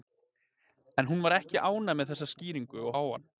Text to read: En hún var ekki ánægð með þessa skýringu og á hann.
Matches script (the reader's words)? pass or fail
pass